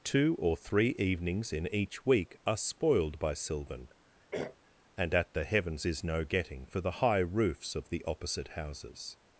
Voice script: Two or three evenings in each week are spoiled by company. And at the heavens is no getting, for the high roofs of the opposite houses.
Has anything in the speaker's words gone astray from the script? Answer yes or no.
yes